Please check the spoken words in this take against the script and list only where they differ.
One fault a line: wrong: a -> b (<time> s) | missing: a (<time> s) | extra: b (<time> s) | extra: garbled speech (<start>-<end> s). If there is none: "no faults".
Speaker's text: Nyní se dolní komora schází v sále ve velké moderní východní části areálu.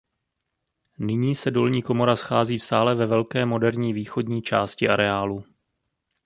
no faults